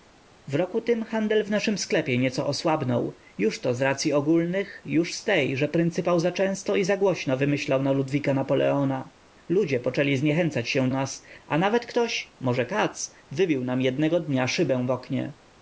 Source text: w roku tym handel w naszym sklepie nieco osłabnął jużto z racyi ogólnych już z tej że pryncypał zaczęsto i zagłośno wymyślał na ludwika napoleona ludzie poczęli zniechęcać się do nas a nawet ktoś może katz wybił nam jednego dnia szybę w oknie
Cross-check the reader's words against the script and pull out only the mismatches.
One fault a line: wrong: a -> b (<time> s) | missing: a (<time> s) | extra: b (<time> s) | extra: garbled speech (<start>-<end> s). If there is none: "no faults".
missing: do (10.9 s)